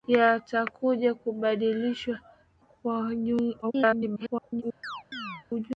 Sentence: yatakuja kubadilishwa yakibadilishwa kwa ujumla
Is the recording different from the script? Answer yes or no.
yes